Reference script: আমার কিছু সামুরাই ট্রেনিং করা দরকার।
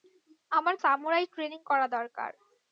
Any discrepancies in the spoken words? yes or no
yes